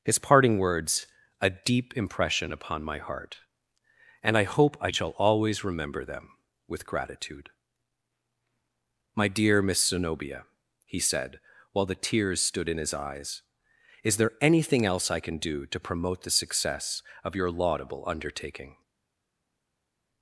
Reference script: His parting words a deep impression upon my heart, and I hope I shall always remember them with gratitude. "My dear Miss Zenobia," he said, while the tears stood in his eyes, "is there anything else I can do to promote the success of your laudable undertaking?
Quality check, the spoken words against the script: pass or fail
pass